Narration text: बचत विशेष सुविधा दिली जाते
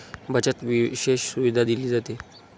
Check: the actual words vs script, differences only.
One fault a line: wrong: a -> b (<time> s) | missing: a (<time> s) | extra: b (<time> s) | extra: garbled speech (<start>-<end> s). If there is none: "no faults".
no faults